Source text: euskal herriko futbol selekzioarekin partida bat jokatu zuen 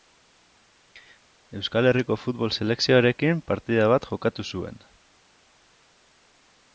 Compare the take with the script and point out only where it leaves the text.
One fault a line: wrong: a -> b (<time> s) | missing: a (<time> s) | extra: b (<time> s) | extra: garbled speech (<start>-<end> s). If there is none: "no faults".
no faults